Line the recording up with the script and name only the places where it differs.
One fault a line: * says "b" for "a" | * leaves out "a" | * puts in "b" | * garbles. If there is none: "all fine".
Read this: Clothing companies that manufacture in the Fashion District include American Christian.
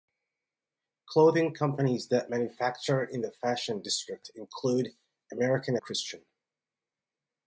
all fine